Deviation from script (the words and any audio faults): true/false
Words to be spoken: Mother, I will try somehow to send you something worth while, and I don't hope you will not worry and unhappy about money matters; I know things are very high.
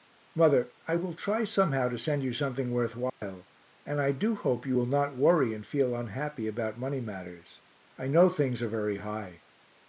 true